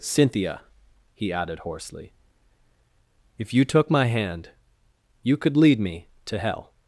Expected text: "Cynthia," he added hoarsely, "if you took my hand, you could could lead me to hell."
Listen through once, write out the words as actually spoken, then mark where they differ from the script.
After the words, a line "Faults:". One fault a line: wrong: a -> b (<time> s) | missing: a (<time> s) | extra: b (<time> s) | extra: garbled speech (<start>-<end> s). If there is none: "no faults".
"Cynthia," he added hoarsely, "if you took my hand, you could lead me to hell."
Faults:
missing: could (5.5 s)